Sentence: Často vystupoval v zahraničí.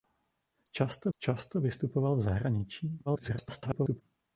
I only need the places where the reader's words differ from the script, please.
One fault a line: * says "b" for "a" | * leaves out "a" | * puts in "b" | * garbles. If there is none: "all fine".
* puts in "často"
* garbles